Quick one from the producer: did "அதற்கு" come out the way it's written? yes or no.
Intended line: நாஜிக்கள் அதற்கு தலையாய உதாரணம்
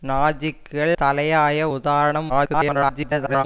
no